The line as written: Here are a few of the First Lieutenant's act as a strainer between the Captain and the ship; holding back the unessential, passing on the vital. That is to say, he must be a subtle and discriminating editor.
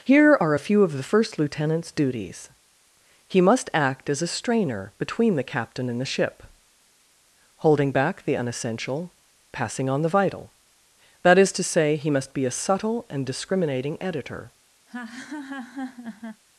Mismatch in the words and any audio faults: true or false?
true